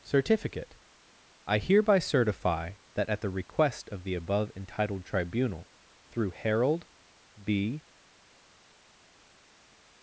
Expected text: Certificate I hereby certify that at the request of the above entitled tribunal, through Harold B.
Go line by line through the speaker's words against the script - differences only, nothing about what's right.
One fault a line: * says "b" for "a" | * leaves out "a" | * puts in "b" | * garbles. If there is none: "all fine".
all fine